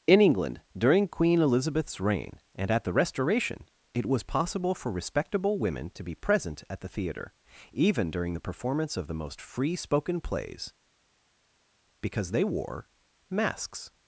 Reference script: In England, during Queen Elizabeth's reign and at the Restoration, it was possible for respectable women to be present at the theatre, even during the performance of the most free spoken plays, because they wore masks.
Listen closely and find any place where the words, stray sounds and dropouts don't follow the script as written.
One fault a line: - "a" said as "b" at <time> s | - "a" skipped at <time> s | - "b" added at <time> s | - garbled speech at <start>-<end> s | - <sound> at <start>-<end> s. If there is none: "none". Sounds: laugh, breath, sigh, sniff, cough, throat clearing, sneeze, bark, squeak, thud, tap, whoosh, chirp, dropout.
none